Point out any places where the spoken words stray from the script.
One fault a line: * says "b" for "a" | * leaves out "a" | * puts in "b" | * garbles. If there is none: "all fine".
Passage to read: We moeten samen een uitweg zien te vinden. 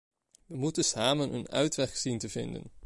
all fine